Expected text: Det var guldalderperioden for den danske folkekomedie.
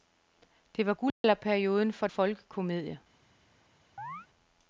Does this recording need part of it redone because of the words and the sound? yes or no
yes